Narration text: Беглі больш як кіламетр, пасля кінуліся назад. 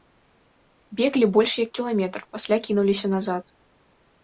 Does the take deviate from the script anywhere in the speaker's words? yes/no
no